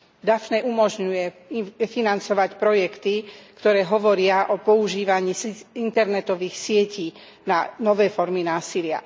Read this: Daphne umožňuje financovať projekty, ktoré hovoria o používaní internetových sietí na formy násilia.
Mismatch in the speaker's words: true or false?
true